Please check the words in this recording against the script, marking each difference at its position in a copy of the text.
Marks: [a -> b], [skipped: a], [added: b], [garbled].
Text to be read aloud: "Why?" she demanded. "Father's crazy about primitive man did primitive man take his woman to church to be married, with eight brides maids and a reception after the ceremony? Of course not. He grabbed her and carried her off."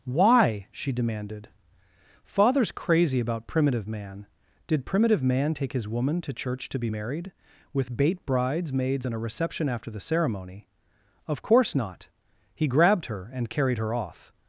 "Why?" she demanded. "Father's crazy about primitive man did primitive man take his woman to church to be married, with [eight -> bait] brides maids and a reception after the ceremony? Of course not. He grabbed her and carried her off."